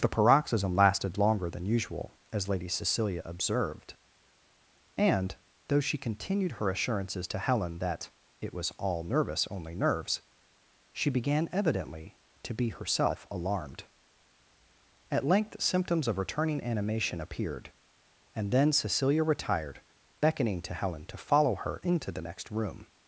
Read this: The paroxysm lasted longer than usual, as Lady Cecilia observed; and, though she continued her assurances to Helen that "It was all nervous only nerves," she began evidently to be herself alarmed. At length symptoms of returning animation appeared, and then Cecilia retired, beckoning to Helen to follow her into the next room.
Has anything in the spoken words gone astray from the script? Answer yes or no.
no